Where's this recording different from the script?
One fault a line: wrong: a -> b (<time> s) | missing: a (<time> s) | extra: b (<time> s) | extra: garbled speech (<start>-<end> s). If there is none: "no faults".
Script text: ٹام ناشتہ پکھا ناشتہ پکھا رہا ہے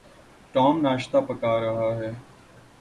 missing: ناشتہ پکھا (1.5 s)